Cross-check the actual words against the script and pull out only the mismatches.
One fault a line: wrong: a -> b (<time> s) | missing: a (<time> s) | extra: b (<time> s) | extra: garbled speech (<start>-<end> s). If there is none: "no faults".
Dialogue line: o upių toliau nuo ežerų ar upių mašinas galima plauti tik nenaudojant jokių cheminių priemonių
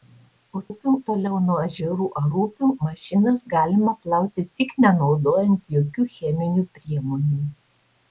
no faults